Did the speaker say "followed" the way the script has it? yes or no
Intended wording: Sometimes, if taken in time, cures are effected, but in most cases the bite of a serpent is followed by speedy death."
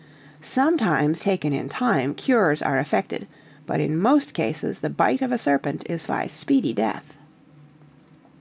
no